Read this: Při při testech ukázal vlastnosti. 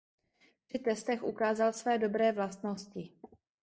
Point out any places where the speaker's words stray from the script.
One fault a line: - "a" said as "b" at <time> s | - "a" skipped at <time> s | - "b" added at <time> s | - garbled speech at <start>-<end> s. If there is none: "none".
- "při" skipped at 0.8 s
- "své dobré" added at 1.7 s